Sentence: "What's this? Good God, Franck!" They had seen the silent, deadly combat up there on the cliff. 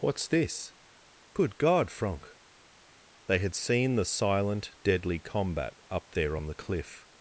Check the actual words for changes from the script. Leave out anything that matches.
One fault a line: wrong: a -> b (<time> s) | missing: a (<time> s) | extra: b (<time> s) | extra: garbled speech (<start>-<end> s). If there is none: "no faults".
no faults